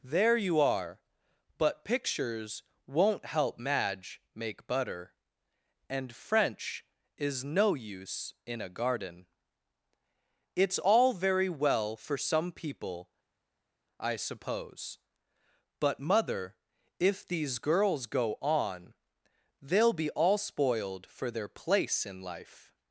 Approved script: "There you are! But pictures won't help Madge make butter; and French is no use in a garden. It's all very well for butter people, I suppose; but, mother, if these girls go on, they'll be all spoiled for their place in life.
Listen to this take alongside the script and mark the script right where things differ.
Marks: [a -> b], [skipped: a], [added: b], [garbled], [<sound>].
"There you are! But pictures won't help Madge make butter; and French is no use in a garden. It's all very well for [butter -> some] people, I suppose; but, mother, if these girls go on, they'll be all spoiled for their place in life.